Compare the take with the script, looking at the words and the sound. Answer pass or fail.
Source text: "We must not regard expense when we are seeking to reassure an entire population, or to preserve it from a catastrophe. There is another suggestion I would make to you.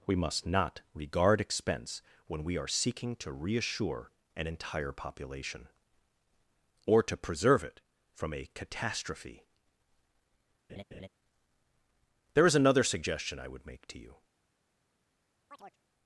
fail